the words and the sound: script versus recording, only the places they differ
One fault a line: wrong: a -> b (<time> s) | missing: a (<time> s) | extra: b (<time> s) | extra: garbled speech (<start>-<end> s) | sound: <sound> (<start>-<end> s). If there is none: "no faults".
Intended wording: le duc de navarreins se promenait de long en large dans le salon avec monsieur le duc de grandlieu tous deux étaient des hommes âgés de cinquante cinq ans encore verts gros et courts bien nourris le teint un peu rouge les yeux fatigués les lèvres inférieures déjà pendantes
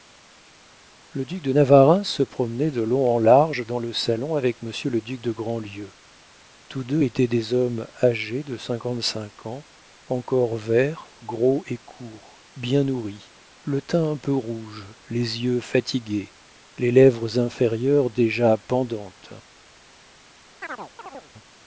sound: chirp (20.6-21.3 s)